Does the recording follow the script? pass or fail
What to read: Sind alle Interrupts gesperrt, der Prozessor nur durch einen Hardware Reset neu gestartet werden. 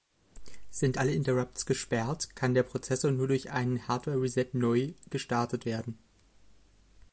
fail